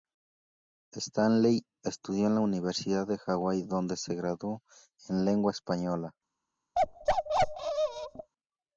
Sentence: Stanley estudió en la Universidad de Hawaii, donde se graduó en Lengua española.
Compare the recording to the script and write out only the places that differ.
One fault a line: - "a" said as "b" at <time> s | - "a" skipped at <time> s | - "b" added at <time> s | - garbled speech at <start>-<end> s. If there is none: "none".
none